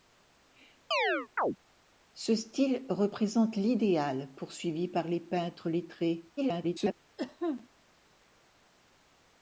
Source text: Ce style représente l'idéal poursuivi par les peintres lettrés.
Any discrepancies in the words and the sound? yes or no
yes